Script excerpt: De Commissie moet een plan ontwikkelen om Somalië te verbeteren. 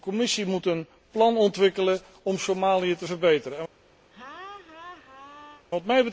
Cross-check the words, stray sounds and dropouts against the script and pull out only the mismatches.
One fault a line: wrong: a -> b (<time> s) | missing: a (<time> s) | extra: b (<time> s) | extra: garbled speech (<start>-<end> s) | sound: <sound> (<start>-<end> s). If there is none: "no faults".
sound: laugh (4.1-5.7 s)